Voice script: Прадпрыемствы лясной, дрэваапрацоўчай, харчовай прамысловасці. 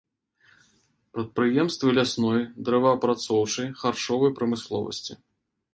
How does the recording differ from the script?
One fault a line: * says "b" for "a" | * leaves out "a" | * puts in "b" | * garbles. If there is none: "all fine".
all fine